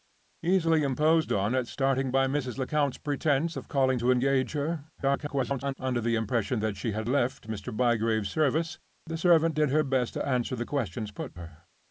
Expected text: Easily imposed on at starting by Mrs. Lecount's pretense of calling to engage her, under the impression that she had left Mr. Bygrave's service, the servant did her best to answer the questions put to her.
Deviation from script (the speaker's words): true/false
true